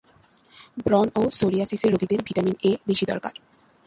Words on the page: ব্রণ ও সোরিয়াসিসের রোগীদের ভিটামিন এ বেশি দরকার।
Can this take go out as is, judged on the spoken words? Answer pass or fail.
pass